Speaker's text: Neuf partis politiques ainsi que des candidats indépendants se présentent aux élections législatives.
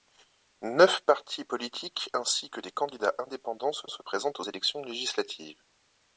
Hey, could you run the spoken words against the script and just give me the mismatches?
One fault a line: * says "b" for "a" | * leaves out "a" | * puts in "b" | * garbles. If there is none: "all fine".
* puts in "se"